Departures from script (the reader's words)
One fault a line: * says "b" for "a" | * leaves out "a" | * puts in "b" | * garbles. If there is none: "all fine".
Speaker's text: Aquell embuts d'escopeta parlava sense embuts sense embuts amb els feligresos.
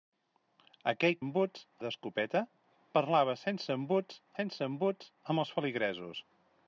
all fine